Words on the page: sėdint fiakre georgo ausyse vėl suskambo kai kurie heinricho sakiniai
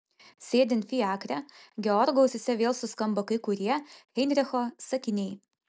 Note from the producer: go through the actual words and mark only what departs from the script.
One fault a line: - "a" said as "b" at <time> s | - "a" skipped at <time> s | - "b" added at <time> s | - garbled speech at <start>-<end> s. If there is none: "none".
none